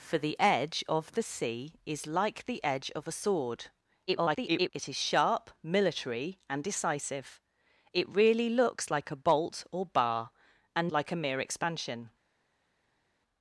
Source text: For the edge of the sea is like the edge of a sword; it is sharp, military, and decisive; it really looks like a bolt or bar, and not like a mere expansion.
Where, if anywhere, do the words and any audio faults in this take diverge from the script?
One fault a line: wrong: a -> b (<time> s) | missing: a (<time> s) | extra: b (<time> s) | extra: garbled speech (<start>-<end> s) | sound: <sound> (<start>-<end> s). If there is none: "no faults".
extra: garbled speech (4.1-4.7 s)
missing: not (10.9 s)